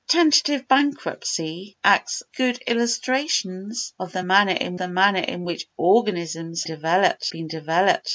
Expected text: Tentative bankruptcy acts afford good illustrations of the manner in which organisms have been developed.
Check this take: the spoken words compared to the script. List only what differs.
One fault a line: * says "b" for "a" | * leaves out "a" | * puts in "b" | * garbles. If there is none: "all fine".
* leaves out "afford"
* puts in "the manner in"
* says "developed" for "have"